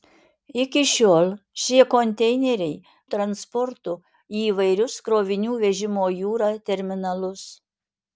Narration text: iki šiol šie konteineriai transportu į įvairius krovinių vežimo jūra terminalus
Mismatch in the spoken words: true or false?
false